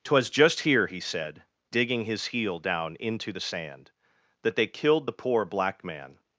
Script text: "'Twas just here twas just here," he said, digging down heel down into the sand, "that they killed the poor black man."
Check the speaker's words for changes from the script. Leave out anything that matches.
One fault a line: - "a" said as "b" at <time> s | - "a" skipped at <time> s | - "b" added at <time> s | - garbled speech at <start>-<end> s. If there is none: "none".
- "twas just here" skipped at 0.9 s
- "down" said as "his" at 2.0 s